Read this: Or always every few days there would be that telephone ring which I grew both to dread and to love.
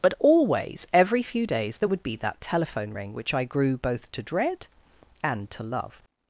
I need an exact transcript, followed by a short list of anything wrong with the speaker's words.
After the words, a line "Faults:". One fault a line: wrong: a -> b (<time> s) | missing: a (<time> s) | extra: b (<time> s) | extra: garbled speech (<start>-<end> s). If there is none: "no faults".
But always every few days there would be that telephone ring which I grew both to dread and to love.
Faults:
wrong: Or -> But (0.0 s)